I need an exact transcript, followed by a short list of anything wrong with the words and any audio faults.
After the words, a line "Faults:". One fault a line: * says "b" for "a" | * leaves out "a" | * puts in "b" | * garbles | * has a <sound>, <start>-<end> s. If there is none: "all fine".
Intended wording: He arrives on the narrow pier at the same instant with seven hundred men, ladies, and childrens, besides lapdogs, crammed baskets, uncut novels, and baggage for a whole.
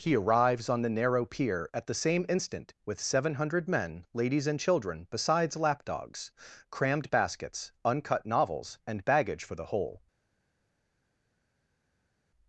He arrives on the narrow pier at the same instant with seven hundred men, ladies, and children, besides lapdogs, crammed baskets, uncut novels, and baggage for the whole.
Faults:
* says "children" for "childrens"
* says "the" for "a"